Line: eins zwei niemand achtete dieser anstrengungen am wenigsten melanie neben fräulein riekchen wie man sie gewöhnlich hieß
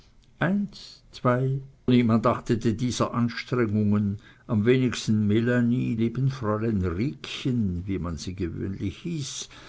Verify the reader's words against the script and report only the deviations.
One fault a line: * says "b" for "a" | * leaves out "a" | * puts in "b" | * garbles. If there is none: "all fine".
all fine